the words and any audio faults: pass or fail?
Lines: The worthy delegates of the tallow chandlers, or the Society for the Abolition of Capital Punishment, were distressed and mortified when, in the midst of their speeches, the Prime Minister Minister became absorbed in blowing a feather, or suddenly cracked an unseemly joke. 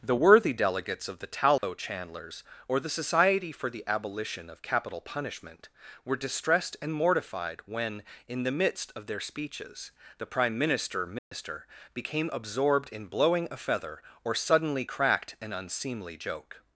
fail